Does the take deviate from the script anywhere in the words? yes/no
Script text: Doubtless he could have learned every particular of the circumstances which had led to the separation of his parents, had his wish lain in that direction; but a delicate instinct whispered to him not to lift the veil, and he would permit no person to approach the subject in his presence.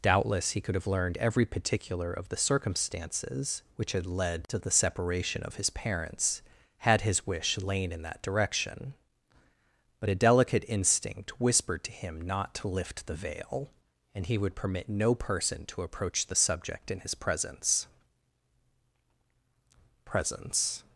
yes